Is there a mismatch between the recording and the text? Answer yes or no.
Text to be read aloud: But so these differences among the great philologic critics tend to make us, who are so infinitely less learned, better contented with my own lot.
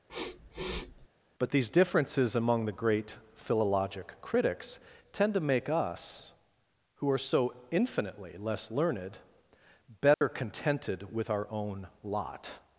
yes